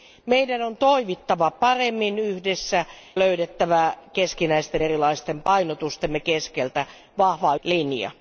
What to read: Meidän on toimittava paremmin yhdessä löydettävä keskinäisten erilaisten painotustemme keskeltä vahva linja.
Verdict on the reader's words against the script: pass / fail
pass